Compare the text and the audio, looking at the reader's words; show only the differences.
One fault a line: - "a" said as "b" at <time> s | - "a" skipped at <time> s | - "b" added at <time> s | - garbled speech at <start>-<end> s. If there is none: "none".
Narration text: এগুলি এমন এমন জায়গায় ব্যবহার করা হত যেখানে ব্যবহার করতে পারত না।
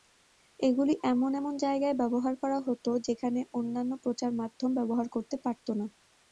- "অন্যান্য প্রচার মাধ্যম" added at 3.5 s